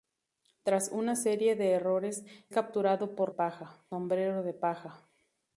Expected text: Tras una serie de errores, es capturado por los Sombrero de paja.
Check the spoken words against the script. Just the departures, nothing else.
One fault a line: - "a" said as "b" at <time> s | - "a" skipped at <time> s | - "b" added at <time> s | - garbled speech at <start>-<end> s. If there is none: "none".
- "es" skipped at 2.2 s
- "los" said as "paja" at 3.3 s